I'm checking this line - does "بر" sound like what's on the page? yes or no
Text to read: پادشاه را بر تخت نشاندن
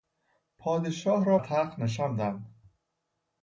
no